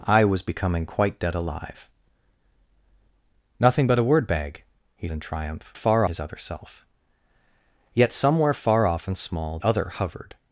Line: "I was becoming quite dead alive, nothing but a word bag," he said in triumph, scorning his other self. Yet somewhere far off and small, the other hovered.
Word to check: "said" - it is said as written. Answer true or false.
false